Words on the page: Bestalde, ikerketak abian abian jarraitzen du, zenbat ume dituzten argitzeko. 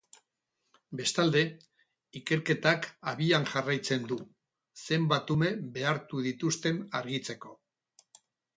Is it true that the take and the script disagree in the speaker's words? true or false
true